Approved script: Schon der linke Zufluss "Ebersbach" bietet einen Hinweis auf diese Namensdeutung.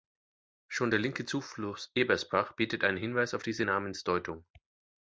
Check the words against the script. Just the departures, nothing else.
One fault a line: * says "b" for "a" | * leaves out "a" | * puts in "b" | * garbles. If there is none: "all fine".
all fine